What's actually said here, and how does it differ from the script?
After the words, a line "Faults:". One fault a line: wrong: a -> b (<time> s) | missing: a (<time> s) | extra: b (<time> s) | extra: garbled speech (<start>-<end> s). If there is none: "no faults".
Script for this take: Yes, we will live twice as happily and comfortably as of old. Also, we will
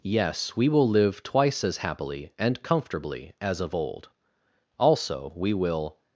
Yes, we will live twice as happily and comfortably as of old. Also, we will
Faults:
no faults